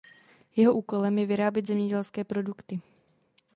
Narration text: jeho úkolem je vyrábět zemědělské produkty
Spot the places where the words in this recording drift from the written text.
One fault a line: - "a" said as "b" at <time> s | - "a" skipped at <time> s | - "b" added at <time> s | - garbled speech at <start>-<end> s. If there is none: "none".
none